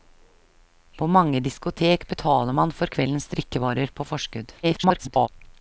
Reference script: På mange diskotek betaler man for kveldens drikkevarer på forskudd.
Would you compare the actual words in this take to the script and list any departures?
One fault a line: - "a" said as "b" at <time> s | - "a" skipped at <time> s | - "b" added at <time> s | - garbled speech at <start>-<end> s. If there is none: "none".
- garbled speech at 4.6-5.3 s